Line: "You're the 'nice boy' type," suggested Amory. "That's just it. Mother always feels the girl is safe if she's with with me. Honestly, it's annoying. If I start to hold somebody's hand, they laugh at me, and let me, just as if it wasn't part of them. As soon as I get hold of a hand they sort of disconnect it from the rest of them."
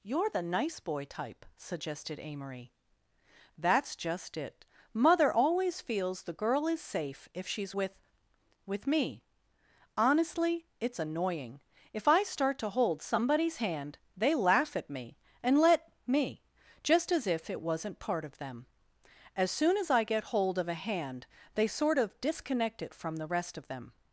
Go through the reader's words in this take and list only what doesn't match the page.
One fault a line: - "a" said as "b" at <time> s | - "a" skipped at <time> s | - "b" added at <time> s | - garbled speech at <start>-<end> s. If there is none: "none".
none